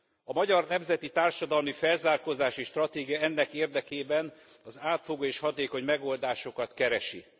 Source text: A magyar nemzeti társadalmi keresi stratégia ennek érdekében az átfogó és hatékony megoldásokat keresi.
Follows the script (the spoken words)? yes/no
no